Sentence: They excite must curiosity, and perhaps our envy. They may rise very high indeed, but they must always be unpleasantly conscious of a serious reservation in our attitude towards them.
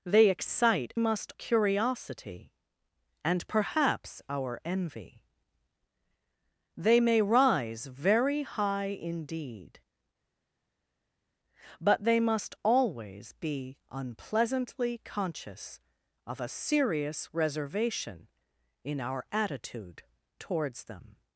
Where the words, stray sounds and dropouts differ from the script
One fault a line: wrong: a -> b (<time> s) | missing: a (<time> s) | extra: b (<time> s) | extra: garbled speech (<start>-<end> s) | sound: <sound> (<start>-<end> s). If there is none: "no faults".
no faults